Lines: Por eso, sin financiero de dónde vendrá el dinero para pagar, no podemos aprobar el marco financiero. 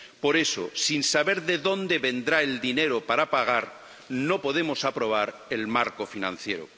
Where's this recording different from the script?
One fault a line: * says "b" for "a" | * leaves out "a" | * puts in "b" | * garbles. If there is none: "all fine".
* says "saber" for "financiero"